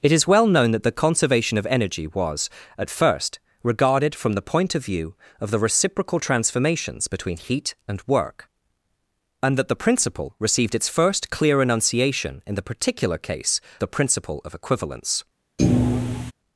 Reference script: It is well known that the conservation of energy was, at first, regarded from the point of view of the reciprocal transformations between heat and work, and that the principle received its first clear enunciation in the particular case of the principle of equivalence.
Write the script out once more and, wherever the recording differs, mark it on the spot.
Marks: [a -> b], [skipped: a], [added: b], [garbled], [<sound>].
It is well known that the conservation of energy was, at first, regarded from the point of view of the reciprocal transformations between heat and work, and that the principle received its first clear enunciation in the particular case [skipped: of] the principle of equivalence. [thud]